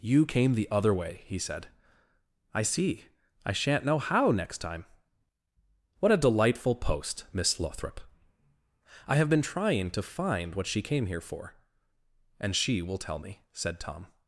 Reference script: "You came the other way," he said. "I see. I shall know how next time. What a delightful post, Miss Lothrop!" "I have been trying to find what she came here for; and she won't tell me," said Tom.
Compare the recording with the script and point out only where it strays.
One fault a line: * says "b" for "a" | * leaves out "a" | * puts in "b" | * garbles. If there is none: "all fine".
* says "shan't" for "shall"
* says "will" for "won't"